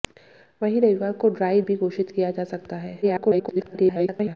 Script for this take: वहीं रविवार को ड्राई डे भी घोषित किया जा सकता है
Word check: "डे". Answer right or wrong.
wrong